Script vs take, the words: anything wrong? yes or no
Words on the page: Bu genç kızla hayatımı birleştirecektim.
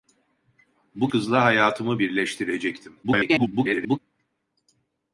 yes